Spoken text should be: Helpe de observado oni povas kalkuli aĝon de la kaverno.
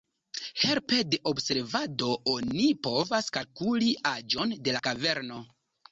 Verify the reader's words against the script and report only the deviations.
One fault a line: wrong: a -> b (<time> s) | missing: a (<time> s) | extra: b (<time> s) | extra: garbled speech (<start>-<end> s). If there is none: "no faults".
no faults